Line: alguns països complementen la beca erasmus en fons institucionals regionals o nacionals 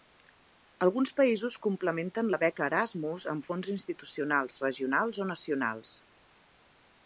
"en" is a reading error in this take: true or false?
true